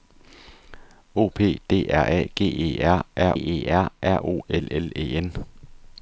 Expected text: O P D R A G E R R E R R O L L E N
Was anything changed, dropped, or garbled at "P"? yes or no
no